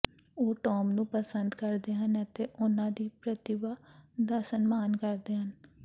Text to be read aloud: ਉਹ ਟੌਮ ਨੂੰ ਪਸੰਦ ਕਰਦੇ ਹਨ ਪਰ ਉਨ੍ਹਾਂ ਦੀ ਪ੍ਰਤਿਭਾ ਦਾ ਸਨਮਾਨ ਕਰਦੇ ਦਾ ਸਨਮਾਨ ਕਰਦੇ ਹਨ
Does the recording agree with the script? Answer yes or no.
no